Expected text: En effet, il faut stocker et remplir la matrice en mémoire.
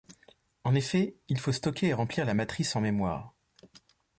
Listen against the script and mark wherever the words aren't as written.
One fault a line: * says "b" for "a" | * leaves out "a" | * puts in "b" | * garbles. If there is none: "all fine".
all fine